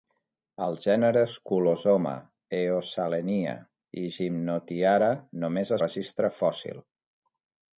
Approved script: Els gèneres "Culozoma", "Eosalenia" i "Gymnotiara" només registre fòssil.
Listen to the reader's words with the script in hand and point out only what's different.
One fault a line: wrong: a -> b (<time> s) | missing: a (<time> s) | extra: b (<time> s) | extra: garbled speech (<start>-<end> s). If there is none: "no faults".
no faults